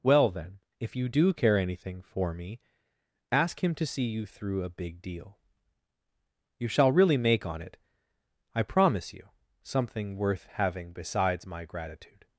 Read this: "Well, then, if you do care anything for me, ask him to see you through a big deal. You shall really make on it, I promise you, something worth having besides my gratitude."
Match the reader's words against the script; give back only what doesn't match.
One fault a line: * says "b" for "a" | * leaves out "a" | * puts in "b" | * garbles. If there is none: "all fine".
all fine